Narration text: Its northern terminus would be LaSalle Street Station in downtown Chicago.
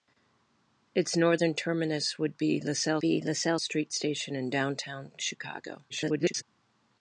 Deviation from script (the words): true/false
true